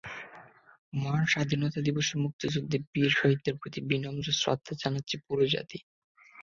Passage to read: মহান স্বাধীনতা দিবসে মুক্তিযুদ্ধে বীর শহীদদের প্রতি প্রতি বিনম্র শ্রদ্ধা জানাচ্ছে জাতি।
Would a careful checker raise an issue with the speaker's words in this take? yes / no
yes